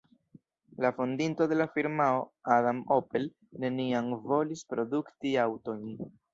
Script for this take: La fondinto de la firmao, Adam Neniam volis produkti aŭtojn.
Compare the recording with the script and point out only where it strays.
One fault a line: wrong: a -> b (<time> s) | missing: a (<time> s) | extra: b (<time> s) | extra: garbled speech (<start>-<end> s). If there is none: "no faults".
extra: Opel (3.0 s)